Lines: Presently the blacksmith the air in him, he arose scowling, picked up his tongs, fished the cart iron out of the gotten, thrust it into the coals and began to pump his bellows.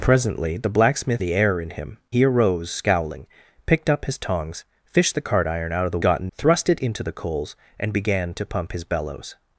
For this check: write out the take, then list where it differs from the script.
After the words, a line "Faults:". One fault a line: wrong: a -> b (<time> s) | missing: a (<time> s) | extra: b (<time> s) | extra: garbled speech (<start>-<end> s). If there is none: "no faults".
Presently the blacksmith the air in him, he arose scowling, picked up his tongs, fished the cart iron out of the gotten, thrust it into the coals and began to pump his bellows.
Faults:
no faults